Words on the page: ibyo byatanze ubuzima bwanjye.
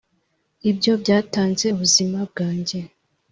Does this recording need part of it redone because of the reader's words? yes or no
no